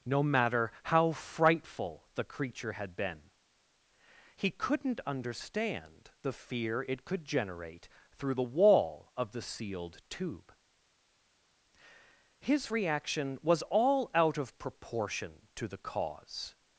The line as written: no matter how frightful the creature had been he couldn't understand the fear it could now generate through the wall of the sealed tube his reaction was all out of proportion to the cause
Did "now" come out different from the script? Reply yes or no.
yes